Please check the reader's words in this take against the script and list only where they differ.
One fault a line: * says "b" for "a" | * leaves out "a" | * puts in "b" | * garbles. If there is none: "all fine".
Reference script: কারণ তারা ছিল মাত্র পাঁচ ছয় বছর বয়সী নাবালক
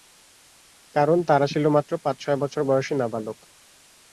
all fine